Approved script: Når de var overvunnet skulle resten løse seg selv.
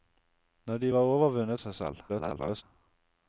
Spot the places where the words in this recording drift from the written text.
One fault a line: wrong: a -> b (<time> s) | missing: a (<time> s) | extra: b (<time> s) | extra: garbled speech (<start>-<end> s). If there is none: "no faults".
missing: skulle resten løse (1.6 s)
extra: garbled speech (2.1-2.6 s)